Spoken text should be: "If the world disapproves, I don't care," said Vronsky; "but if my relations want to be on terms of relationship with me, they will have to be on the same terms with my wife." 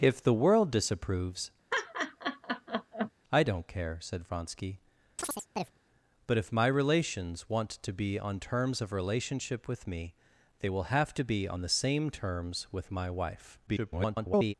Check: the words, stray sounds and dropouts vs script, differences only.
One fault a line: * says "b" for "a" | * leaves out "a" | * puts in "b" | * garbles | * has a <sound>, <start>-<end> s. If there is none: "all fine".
* has a laugh, 1.7-3.1 s
* has a chirp, 5.2-5.8 s
* garbles